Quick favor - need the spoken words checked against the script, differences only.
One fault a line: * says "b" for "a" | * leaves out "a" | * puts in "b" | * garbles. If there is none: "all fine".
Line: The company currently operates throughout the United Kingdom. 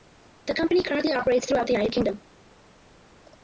all fine